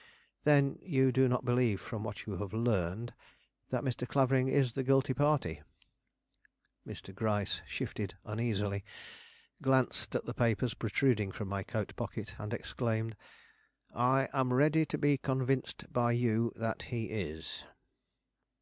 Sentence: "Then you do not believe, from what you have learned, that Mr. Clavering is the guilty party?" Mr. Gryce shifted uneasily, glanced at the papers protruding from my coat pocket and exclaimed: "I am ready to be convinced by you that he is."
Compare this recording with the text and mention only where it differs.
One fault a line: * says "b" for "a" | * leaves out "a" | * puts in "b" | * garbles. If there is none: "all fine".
all fine